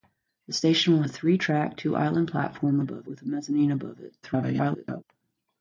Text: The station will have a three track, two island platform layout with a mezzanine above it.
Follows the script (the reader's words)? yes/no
no